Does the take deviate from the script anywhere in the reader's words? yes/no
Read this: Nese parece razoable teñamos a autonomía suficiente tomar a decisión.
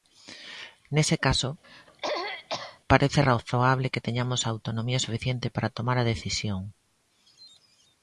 yes